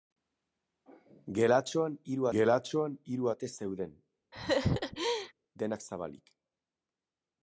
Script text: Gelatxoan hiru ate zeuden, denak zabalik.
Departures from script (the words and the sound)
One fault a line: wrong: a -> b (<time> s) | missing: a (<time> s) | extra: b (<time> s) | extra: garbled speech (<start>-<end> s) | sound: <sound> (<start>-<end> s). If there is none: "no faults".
extra: gelatxoan hiru (2.4 s)
sound: laugh (4.3-5.3 s)